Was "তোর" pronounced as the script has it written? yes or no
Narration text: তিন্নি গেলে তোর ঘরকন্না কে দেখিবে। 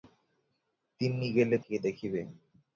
no